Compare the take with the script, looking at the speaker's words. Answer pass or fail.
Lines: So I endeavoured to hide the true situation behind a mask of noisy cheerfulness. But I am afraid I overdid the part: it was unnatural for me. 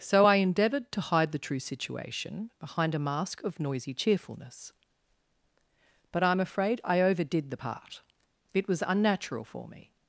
pass